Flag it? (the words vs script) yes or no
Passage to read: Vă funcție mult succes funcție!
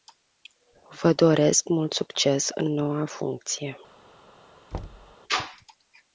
yes